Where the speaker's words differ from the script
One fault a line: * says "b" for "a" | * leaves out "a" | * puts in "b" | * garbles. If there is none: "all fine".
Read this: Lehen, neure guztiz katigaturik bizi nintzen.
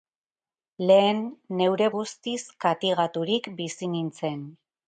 all fine